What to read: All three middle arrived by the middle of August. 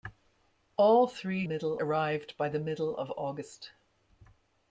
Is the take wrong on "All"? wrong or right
right